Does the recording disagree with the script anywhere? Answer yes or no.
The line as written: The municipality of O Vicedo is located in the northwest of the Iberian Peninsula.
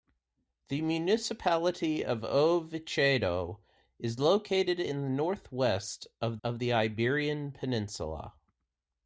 yes